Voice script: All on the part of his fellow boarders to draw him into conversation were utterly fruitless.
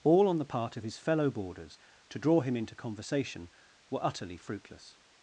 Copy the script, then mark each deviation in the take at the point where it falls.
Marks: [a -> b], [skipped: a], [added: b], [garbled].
All on the part of his fellow boarders to draw him into conversation were utterly fruitless.